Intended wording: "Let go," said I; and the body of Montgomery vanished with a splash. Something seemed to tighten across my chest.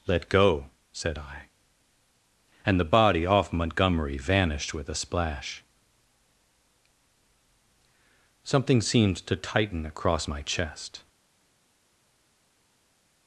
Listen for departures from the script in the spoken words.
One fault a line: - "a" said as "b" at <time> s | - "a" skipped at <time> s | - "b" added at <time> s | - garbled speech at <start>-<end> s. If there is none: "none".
- "of" said as "off" at 3.2 s